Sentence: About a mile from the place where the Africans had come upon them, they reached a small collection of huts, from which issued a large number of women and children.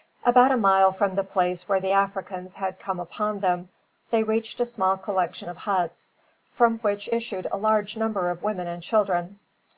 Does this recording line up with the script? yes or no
yes